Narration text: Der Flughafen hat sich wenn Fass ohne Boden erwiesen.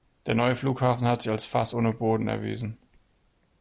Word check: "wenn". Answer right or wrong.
wrong